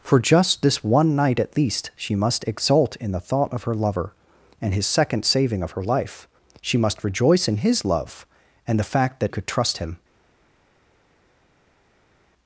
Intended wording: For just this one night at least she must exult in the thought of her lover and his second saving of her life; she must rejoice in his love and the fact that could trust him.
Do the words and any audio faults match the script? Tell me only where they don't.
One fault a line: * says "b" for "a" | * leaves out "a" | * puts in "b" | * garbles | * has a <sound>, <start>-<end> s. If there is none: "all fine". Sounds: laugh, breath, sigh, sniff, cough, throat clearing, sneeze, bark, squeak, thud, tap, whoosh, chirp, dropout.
all fine